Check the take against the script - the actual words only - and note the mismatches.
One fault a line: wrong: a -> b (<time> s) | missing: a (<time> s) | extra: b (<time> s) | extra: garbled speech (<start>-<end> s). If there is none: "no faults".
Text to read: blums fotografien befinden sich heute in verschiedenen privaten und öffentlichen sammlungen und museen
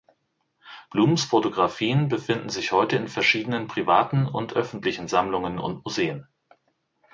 no faults